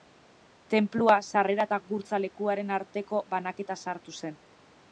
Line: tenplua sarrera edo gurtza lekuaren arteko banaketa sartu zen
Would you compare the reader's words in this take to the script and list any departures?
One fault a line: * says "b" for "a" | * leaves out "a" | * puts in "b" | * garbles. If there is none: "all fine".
* says "eta" for "edo"